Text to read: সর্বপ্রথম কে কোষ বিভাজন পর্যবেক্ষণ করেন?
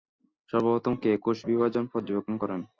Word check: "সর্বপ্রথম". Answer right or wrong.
right